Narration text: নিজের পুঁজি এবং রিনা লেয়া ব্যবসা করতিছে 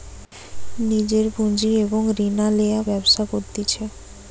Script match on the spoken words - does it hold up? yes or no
yes